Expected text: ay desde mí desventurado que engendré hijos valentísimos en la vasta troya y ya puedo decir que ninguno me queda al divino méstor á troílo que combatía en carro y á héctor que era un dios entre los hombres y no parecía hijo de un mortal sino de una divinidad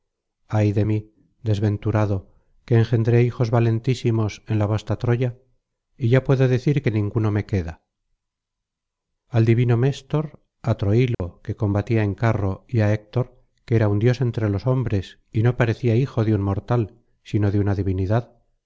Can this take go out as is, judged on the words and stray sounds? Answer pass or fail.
fail